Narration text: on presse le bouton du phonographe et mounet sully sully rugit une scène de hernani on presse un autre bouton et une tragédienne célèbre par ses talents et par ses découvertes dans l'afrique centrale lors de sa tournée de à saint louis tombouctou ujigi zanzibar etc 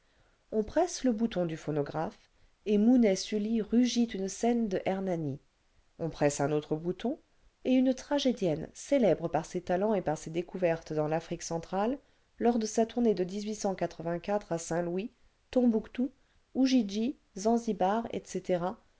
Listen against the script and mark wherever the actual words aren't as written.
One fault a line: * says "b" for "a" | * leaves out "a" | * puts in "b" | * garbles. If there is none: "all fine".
* leaves out "sully"